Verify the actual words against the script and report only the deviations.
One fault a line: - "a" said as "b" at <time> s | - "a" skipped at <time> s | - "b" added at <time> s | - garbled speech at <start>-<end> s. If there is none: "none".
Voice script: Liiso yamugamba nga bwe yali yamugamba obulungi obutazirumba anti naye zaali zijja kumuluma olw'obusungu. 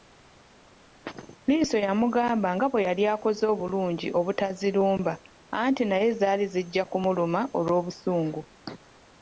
- "yamugamba" said as "akoze" at 3.1 s